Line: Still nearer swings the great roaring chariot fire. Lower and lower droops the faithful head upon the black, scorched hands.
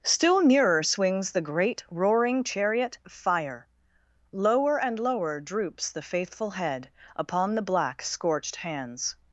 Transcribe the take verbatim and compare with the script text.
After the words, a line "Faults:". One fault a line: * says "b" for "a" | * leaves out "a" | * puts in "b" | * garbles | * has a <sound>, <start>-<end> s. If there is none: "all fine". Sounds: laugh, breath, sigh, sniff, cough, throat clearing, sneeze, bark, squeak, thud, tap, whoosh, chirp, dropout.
Still nearer swings the great roaring chariot fire. Lower and lower droops the faithful head upon the black, scorched hands.
Faults:
all fine